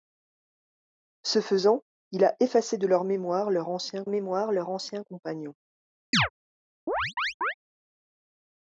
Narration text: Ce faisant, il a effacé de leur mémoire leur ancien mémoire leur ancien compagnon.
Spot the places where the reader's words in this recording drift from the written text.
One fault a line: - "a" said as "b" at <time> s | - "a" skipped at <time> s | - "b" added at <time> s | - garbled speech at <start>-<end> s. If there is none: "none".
none